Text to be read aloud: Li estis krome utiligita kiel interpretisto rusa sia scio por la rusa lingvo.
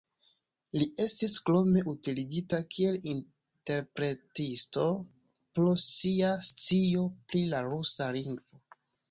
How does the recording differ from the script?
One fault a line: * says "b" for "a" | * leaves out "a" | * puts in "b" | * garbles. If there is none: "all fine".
* says "pro" for "rusa"
* says "pri" for "por"